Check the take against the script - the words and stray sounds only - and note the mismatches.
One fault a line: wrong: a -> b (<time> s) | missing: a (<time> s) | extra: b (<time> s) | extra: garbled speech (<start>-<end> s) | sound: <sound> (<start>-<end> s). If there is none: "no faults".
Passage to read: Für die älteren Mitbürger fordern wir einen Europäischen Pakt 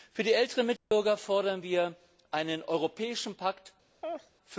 sound: dropout (0.8-0.9 s)
sound: laugh (4.0-4.3 s)